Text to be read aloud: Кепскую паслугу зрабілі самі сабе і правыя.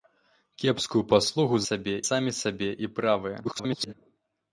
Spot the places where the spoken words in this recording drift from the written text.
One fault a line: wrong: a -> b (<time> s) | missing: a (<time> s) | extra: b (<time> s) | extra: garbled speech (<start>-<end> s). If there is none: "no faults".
wrong: зрабілі -> сабе (1.7 s)
extra: garbled speech (3.4-3.9 s)